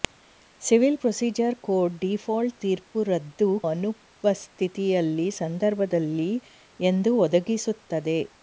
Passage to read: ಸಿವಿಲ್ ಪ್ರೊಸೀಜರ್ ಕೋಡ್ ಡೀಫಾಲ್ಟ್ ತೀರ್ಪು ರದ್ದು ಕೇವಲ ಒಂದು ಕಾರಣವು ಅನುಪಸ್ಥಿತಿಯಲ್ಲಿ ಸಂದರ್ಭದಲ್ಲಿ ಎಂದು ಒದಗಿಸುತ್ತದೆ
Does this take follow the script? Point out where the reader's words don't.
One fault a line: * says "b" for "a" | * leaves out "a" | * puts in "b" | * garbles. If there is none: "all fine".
* leaves out "ಕೇವಲ ಒಂದು ಕಾರಣವು"